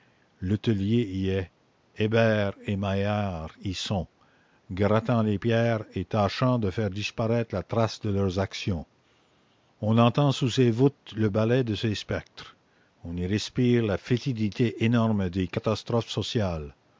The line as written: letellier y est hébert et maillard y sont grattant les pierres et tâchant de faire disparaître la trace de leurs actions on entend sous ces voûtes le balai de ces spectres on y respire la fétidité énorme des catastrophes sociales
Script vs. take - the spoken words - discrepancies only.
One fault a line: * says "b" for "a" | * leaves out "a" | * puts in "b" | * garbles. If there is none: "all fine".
all fine